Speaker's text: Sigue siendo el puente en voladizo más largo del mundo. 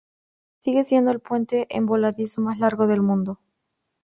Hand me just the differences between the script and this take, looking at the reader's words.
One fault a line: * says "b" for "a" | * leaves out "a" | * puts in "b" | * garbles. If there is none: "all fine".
all fine